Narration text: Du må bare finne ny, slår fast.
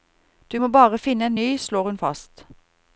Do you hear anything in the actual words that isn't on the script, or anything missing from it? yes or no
yes